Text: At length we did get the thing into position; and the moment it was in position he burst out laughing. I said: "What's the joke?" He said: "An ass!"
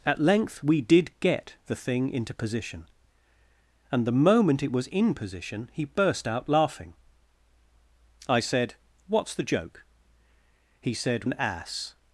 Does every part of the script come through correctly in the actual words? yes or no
yes